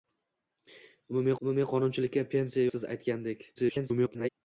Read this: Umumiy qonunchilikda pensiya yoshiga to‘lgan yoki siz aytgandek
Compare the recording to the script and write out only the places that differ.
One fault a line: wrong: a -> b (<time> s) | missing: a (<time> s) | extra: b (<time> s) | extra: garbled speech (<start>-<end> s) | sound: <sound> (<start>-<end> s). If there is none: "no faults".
extra: umumiy (1.4 s)
missing: yoshiga to‘lgan yoki (2.6 s)
extra: garbled speech (3.5-4.3 s)